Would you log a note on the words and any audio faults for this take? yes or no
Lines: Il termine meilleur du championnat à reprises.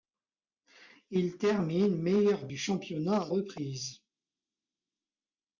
no